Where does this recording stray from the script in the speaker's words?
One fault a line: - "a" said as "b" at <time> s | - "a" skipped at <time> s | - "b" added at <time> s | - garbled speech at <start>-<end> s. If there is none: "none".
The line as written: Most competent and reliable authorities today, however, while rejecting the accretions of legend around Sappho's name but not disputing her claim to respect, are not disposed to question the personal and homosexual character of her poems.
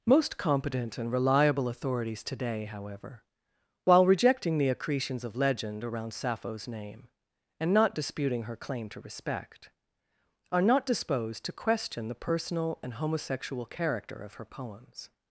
- "but" said as "and" at 7.6 s